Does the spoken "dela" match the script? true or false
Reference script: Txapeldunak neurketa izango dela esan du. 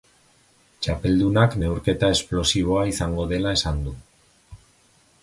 true